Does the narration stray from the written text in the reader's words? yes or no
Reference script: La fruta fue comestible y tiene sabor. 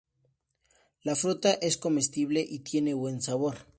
yes